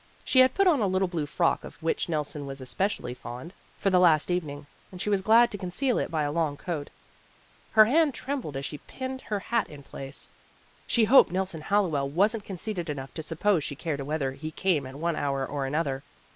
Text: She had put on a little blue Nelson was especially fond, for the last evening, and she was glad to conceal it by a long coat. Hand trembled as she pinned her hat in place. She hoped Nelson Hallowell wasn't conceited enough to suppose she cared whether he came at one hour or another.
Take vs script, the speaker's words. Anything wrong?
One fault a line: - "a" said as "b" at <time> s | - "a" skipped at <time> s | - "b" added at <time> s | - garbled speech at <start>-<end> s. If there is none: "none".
- "frock of which" added at 1.3 s
- "Her" added at 7.7 s